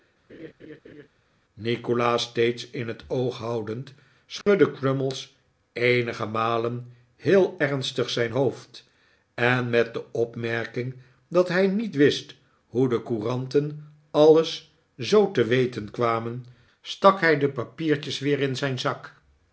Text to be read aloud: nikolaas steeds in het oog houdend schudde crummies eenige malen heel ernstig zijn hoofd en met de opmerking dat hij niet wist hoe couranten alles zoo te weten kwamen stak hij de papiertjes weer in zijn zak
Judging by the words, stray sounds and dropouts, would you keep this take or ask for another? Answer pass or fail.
fail